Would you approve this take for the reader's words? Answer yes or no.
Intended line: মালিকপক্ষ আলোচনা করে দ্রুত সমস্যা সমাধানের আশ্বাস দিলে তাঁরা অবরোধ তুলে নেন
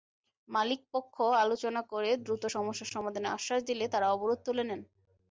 yes